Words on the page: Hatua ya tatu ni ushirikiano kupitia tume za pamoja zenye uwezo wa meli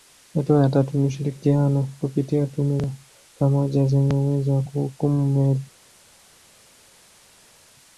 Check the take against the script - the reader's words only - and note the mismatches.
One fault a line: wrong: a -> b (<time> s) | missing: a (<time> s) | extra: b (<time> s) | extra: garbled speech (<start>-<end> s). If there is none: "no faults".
extra: kuhukumu (4.6 s)